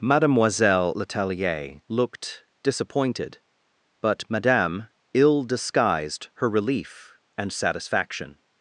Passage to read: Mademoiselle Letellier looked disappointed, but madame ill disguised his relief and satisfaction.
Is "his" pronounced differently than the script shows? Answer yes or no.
yes